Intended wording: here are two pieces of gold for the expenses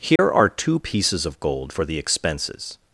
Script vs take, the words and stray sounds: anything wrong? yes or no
yes